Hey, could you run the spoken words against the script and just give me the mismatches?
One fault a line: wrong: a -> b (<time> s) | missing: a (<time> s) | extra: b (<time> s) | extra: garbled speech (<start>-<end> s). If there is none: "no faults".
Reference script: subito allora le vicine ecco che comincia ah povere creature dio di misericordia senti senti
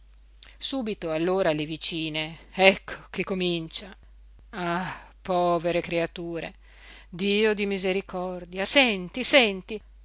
no faults